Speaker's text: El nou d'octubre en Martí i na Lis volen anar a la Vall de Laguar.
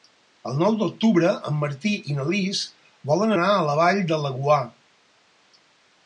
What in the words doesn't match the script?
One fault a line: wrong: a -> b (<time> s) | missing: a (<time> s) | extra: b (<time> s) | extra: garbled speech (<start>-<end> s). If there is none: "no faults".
no faults